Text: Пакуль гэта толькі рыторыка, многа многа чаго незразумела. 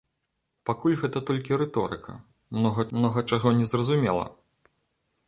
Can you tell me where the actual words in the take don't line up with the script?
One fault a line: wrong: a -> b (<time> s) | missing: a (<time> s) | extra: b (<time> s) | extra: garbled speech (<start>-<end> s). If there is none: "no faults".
no faults